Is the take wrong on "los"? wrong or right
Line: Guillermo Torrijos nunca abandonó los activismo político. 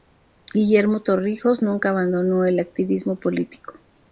wrong